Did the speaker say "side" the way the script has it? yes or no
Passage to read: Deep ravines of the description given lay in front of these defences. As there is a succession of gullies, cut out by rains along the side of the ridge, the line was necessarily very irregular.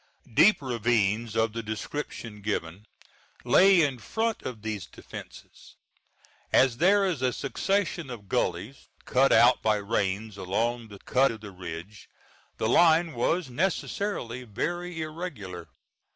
no